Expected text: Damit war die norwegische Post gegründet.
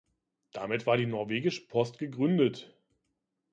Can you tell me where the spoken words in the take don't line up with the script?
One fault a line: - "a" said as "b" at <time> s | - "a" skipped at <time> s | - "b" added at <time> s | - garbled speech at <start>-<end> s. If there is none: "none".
none